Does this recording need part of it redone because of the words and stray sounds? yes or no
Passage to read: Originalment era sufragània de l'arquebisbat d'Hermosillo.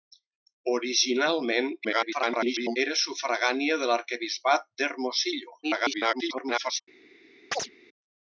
yes